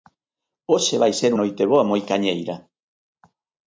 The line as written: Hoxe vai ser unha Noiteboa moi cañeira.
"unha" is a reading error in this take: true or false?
true